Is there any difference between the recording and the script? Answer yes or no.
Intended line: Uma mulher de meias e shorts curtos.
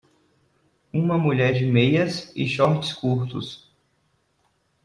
no